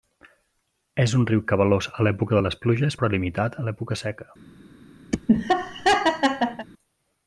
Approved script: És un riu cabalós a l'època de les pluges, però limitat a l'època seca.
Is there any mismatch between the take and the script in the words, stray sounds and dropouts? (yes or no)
yes